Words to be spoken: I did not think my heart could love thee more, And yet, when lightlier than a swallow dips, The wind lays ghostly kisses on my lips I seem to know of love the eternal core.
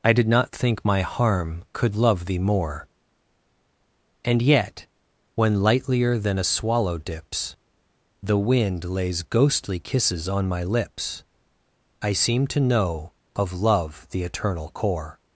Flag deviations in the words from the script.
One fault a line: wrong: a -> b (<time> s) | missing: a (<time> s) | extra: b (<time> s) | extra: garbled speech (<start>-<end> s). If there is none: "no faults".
wrong: heart -> harm (1.0 s)